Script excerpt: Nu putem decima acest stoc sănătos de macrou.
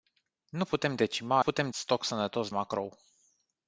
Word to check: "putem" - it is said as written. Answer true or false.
true